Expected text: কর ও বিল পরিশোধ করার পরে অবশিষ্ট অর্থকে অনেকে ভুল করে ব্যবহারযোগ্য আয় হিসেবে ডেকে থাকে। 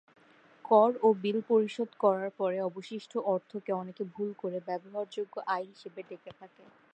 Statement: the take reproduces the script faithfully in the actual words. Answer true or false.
true